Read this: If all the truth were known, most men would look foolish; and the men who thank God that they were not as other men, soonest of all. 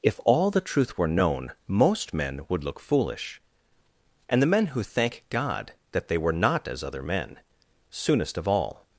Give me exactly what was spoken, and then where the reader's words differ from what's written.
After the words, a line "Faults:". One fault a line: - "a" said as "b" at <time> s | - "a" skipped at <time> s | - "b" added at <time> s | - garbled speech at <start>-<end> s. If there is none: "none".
If all the truth were known, most men would look foolish; and the men who thank God that they were not as other men, soonest of all.
Faults:
none